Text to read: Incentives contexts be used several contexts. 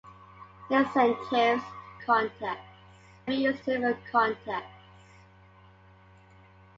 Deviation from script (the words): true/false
false